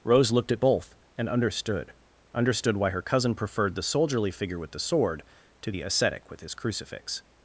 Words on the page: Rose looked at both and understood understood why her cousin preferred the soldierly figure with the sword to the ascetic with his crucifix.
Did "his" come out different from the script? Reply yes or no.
no